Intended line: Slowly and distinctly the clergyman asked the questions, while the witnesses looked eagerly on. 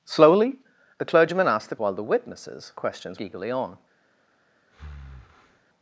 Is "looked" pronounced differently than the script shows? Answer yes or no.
yes